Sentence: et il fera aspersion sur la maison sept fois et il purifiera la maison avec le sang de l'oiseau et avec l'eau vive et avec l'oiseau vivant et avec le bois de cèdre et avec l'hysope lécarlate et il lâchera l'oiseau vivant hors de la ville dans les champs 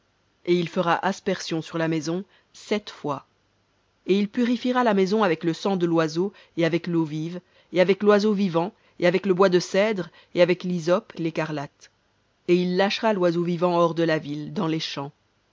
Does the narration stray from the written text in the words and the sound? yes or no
no